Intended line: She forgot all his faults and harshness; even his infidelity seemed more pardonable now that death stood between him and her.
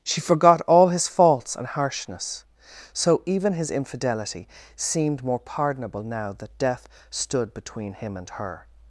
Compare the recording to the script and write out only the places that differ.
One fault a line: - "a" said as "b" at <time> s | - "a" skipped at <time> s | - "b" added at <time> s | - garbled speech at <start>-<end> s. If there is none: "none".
- "so" added at 2.9 s